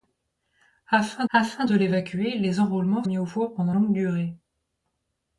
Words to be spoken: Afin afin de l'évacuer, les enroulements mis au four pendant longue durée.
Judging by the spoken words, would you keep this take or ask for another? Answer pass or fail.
pass